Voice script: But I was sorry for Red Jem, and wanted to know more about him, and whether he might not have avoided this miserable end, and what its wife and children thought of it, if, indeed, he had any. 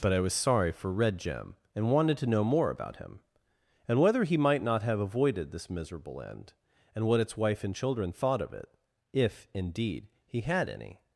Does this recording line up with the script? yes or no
yes